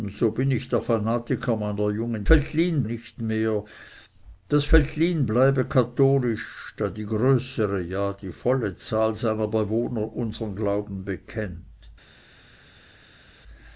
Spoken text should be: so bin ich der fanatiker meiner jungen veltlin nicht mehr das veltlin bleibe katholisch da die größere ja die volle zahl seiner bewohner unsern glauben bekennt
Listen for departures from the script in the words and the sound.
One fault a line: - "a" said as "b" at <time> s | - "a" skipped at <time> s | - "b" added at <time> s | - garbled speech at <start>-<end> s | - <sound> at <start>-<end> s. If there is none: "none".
none